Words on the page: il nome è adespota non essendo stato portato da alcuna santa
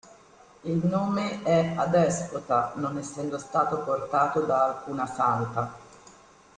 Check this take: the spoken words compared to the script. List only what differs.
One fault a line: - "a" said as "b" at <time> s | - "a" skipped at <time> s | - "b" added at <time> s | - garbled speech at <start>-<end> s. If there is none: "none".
none